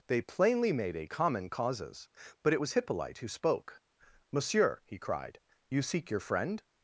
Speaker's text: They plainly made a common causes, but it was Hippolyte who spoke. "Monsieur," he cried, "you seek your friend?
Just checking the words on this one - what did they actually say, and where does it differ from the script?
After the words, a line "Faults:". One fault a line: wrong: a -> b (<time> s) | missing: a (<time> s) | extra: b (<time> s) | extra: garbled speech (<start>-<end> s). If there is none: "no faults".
They plainly made a common causes, but it was Hippolyte who spoke. "Monsieur," he cried, "you seek your friend?
Faults:
no faults